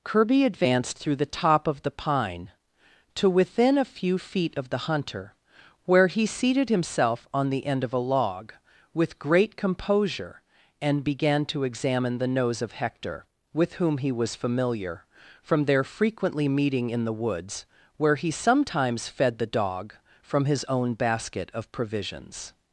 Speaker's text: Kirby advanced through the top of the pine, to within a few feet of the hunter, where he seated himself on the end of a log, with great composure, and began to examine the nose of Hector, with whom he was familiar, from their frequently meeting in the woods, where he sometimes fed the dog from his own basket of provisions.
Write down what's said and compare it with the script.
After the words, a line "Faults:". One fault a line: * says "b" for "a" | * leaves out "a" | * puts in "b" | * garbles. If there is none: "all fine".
Kirby advanced through the top of the pine, to within a few feet of the hunter, where he seated himself on the end of a log, with great composure, and began to examine the nose of Hector, with whom he was familiar, from their frequently meeting in the woods, where he sometimes fed the dog from his own basket of provisions.
Faults:
all fine